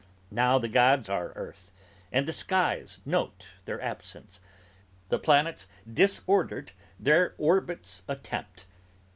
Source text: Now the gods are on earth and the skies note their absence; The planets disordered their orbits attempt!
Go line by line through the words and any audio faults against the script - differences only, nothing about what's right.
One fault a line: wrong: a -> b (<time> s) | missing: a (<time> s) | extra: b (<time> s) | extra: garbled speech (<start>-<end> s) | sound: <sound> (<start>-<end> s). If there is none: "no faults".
missing: on (1.3 s)